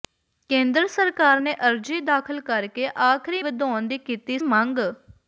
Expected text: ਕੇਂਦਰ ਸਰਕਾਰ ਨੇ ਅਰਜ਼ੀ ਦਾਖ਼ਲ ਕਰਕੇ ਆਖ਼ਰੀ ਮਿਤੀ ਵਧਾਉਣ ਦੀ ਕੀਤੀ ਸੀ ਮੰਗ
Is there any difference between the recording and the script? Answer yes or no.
yes